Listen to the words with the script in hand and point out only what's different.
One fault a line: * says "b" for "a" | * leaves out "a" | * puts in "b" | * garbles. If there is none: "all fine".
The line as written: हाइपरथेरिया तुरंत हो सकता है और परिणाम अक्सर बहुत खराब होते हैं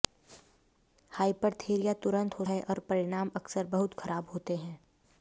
* leaves out "सकता"